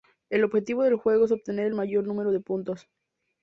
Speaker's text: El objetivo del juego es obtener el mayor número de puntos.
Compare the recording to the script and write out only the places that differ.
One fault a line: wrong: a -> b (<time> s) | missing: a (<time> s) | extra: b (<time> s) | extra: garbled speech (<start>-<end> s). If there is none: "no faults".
no faults